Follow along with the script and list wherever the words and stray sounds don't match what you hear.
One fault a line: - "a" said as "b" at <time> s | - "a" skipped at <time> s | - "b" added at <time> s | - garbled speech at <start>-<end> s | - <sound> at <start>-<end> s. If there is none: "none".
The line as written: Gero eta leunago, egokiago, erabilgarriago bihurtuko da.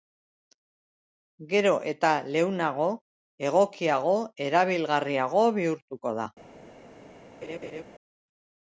- laugh at 7.4-7.8 s